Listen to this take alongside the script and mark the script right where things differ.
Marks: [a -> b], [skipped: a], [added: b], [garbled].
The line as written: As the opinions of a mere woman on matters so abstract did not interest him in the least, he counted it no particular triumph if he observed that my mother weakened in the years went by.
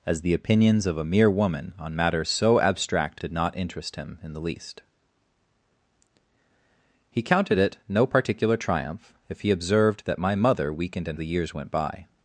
As the opinions of a mere woman on matters so abstract did not interest him in the least, he counted it no particular triumph if he observed that my mother weakened in the years went by.